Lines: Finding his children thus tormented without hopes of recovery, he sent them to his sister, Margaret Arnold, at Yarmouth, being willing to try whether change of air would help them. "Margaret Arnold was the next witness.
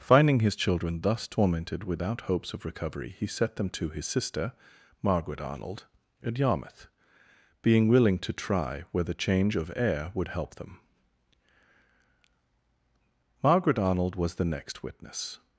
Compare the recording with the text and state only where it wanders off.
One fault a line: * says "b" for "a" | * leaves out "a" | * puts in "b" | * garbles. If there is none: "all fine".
* says "set" for "sent"